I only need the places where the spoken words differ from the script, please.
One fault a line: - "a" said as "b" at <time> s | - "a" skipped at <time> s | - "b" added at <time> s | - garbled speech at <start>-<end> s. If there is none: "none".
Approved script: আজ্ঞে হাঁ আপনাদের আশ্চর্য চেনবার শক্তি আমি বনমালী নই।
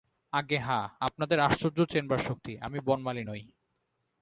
none